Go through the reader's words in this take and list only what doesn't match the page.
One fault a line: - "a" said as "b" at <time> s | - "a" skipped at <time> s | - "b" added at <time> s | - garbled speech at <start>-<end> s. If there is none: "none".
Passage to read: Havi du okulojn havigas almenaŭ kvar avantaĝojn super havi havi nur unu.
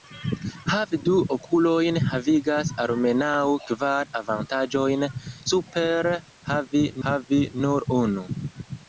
none